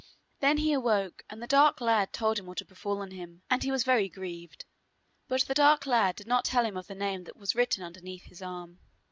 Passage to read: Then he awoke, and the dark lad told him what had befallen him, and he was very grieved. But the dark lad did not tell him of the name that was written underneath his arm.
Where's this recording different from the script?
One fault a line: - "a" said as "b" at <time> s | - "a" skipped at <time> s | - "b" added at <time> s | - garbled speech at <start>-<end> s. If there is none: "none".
none